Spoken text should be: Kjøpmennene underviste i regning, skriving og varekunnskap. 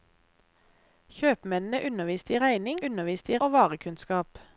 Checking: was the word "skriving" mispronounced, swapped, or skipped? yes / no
yes